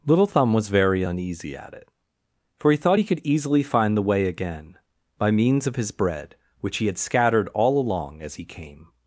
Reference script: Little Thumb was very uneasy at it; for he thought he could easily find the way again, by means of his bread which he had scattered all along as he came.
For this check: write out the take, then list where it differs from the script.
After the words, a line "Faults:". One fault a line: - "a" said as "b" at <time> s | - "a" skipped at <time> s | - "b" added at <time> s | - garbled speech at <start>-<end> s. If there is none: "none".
Little Thumb was very uneasy at it; for he thought he could easily find the way again, by means of his bread which he had scattered all along as he came.
Faults:
none